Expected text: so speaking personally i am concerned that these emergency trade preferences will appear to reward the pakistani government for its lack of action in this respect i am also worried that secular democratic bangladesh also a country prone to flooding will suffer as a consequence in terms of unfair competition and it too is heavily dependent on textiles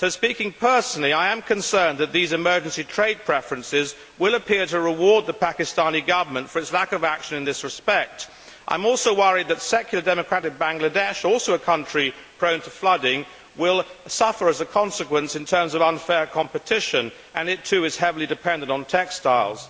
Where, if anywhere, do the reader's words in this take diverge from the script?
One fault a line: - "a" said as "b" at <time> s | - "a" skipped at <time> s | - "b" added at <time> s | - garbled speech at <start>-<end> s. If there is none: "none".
none